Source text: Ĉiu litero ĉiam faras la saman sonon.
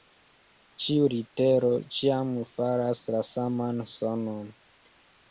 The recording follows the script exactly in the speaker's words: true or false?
true